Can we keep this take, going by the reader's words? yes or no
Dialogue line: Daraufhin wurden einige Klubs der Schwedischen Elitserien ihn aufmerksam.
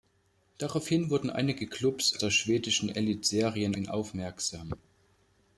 yes